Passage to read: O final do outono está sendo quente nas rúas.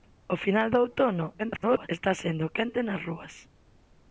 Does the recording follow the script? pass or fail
fail